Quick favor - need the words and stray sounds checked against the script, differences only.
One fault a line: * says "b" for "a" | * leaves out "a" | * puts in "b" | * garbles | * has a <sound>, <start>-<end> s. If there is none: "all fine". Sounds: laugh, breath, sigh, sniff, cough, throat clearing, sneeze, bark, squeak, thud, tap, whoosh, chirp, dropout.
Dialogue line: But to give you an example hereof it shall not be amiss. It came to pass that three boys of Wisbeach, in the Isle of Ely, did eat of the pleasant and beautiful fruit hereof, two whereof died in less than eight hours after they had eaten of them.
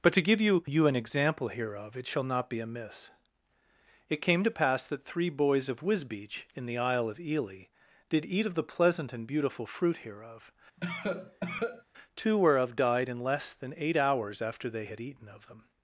* puts in "you"
* has a cough, 10.8-11.8 s